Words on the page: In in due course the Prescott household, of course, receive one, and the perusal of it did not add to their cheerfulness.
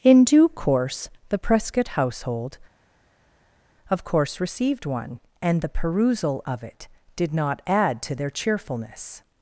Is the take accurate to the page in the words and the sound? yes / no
no